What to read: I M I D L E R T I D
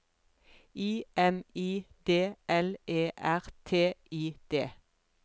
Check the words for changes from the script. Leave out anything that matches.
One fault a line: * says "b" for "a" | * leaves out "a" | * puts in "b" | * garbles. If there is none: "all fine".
all fine